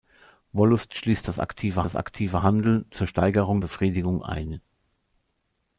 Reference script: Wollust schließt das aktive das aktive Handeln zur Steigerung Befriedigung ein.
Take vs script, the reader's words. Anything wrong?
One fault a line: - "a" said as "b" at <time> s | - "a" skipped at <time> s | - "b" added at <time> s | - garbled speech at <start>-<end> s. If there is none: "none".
none